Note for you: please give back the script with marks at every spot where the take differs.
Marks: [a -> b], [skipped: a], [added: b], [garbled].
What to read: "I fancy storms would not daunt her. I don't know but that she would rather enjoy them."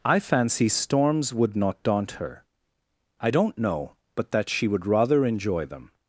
"I fancy storms would not daunt her. I don't know but that she would rather enjoy them."